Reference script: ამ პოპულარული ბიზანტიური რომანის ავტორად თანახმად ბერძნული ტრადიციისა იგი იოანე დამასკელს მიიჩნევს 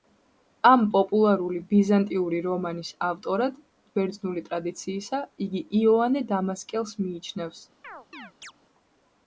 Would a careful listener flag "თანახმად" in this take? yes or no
yes